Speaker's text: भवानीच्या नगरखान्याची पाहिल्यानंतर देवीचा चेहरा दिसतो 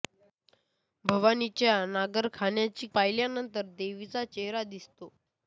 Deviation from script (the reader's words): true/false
false